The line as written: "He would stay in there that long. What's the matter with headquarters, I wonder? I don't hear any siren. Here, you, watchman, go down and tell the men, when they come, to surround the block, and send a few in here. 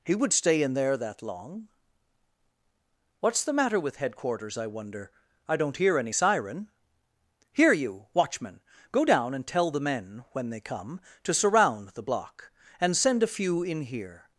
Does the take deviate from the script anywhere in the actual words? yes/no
no